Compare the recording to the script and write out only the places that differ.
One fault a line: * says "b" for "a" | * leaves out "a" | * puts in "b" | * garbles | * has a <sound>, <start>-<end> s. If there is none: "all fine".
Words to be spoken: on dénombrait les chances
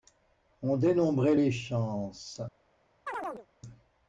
* has a chirp, 3.1-3.5 s